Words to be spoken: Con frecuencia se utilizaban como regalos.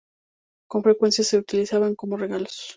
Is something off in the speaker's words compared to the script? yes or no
no